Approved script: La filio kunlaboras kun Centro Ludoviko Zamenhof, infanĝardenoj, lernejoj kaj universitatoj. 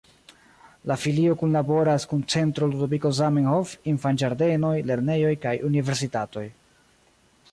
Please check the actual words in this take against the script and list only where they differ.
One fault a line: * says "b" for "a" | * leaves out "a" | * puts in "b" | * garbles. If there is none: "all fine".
all fine